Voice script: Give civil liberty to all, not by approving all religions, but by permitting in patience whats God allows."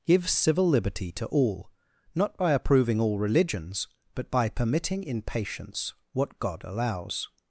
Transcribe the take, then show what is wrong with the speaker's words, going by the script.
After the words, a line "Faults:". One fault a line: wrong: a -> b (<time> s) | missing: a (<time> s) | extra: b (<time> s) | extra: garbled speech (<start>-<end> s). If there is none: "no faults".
Give civil liberty to all, not by approving all religions, but by permitting in patience what God allows."
Faults:
wrong: whats -> what (6.1 s)